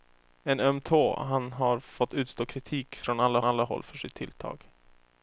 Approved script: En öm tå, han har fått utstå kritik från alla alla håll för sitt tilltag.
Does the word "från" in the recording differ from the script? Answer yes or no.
no